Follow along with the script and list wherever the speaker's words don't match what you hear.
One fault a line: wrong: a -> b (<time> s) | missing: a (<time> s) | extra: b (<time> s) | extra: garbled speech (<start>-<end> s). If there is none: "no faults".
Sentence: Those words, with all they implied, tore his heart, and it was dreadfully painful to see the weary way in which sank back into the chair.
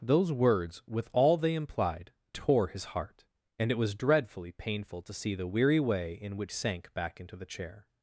no faults